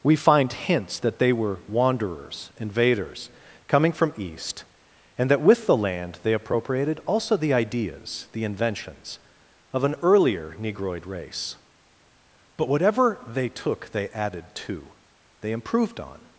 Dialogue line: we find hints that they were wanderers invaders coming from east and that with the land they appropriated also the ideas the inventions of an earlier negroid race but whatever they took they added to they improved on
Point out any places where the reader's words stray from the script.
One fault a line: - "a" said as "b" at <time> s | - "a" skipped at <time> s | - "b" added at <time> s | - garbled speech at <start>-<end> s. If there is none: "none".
none